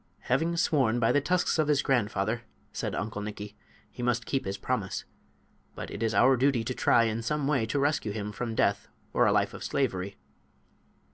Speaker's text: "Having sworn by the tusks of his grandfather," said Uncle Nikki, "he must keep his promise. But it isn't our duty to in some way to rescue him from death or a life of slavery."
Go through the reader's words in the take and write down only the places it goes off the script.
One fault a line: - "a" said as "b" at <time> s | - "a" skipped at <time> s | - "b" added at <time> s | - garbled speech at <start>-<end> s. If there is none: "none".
- "isn't" said as "is" at 6.0 s
- "try" added at 6.7 s